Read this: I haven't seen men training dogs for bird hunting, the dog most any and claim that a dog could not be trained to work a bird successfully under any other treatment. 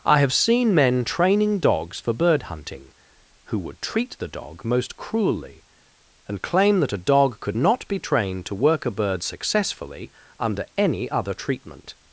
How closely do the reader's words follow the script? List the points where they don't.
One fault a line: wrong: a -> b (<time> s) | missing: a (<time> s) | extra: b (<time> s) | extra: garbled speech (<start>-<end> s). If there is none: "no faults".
wrong: haven't -> have (0.2 s)
extra: who would treat (3.5 s)
wrong: any -> cruelly (5.0 s)